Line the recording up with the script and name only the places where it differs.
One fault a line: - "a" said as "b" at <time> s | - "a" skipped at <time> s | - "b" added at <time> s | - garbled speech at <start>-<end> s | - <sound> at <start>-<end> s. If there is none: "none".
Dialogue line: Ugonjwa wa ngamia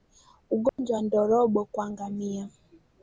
- dropout at 0.7-0.8 s
- "ndorobo kwa" added at 1.0 s